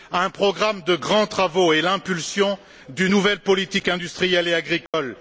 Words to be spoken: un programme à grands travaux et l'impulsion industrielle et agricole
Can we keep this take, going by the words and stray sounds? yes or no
no